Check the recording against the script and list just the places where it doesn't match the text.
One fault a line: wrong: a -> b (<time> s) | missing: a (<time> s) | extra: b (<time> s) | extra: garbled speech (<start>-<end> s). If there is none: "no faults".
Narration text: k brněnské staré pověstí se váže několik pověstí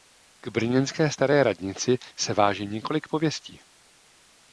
wrong: pověstí -> radnici (1.4 s)